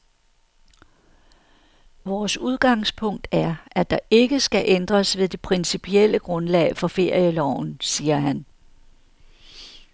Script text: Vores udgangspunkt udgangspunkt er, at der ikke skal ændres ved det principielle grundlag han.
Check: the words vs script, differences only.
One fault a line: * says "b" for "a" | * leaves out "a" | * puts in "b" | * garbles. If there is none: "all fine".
* leaves out "udgangspunkt"
* puts in "for ferieloven siger"